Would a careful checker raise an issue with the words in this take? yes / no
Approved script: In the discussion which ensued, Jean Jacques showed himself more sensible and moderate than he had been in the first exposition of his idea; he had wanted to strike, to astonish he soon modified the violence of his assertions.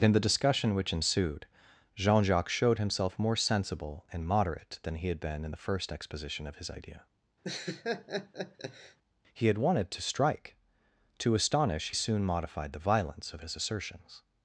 yes